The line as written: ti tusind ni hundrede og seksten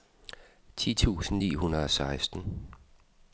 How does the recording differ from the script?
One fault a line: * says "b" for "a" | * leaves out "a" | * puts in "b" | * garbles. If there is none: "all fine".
all fine